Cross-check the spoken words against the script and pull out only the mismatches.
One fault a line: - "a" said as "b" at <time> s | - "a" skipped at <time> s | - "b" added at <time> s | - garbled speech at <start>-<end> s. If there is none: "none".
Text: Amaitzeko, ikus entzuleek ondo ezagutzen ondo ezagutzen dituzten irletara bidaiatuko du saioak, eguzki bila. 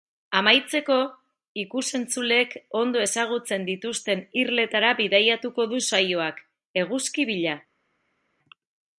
- "ondo ezagutzen" skipped at 3.7 s